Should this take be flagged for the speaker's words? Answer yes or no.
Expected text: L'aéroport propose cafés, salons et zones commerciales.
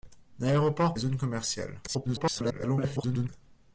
yes